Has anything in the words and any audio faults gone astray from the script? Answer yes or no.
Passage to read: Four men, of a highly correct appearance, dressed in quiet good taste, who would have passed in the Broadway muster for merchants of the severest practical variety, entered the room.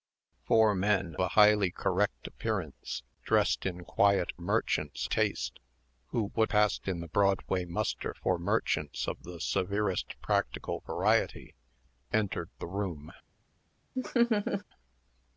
yes